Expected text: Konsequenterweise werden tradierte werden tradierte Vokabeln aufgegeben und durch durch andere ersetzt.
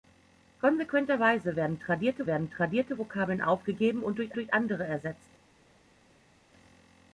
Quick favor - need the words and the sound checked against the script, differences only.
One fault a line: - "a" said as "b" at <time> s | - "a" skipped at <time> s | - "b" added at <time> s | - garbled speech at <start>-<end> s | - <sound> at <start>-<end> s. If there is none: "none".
none